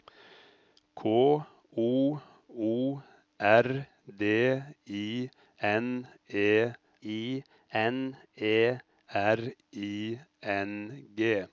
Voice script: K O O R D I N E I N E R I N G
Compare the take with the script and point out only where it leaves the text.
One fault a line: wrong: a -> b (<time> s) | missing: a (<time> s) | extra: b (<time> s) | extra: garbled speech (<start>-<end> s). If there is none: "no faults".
no faults